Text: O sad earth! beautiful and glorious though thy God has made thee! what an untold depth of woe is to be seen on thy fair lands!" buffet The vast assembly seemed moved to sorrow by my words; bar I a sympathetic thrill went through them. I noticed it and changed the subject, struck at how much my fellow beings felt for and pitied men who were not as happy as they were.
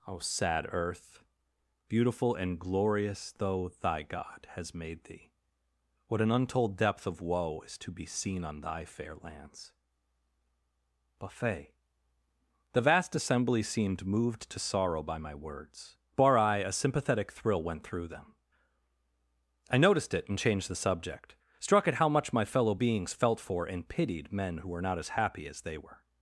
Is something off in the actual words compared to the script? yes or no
no